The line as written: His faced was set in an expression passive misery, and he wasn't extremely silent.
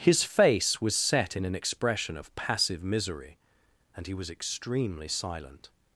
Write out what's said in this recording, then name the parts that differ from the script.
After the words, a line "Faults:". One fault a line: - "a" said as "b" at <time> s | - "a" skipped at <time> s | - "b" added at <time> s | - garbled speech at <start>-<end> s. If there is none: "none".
His face was set in an expression of passive misery, and he was extremely silent.
Faults:
- "faced" said as "face" at 0.2 s
- "of" added at 2.2 s
- "wasn't" said as "was" at 4.2 s